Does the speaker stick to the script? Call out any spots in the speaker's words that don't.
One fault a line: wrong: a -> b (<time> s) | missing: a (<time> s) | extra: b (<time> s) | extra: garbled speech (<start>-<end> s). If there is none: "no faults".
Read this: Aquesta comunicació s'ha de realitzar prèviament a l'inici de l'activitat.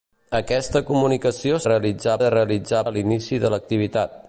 wrong: s'ha -> realitzar (1.7 s)
missing: prèviament (2.8 s)